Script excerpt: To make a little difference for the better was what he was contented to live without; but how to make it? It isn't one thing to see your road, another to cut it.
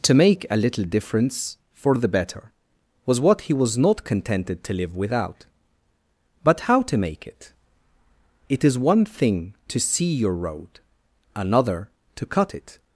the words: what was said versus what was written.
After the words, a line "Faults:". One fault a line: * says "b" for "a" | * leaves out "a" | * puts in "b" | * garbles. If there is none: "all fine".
To make a little difference for the better was what he was not contented to live without; but how to make it? It is one thing to see your road, another to cut it.
Faults:
* puts in "not"
* says "is" for "isn't"